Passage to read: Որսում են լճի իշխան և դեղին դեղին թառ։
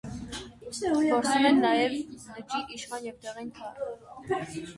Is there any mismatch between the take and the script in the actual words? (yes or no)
yes